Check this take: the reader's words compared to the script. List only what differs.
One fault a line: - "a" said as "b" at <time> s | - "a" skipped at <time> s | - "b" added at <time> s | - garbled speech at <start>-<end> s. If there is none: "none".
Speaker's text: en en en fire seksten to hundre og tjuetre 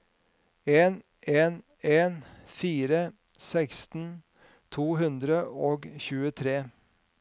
none